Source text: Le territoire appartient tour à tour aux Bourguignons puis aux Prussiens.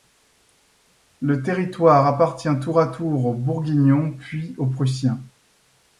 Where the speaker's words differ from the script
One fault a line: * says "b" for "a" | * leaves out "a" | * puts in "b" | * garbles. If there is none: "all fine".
all fine